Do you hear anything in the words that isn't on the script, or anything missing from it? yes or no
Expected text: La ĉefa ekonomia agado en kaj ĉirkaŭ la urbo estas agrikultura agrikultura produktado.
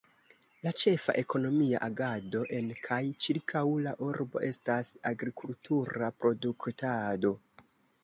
yes